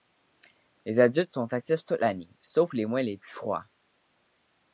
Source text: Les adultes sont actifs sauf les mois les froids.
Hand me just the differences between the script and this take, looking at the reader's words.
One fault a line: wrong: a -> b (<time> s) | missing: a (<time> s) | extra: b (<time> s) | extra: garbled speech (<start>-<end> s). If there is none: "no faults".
extra: toute l'année (1.9 s)
extra: plus (3.2 s)